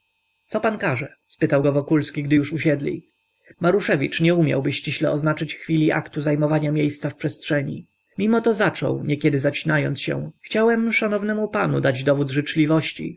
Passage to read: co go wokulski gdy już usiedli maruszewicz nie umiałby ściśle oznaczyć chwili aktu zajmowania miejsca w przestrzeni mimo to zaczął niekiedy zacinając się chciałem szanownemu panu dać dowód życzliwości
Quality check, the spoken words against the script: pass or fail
fail